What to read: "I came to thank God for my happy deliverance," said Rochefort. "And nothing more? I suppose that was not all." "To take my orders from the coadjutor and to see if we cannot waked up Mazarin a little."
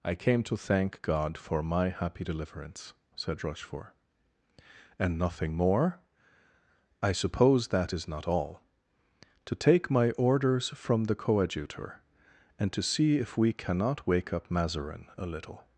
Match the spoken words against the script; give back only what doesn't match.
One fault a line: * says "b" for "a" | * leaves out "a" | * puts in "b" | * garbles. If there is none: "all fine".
* says "is" for "was"
* says "wake" for "waked"